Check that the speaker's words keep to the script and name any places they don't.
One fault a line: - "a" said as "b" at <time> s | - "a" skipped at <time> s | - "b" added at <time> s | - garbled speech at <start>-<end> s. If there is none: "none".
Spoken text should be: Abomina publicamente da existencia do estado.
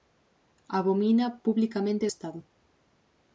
- "da existencia do" skipped at 2.0 s